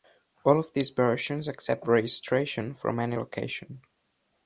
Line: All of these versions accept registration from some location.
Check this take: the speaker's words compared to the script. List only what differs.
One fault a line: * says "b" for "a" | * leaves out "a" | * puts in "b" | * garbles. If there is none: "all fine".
* says "any" for "some"